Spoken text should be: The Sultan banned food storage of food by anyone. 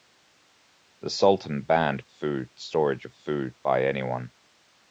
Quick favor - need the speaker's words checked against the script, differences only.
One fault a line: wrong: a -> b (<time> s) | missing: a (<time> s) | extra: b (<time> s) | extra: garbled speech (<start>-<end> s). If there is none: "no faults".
no faults